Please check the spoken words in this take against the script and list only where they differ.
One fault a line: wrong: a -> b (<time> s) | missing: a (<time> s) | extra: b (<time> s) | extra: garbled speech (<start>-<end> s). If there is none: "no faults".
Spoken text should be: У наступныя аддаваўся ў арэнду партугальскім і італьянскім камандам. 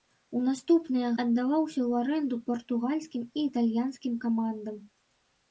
no faults